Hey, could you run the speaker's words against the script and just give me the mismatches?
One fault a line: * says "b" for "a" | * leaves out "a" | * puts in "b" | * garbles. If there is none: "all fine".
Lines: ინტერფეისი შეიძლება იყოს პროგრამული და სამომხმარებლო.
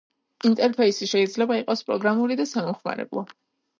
all fine